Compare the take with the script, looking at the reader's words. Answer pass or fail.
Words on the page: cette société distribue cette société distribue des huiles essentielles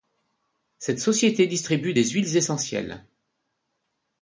fail